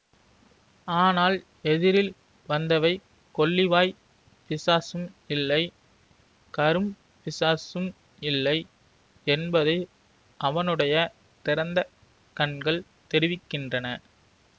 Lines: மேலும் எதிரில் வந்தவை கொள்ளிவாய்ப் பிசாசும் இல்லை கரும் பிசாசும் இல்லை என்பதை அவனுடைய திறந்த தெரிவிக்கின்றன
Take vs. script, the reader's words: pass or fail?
fail